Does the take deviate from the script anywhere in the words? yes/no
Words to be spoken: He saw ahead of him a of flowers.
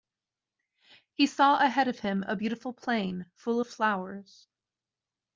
yes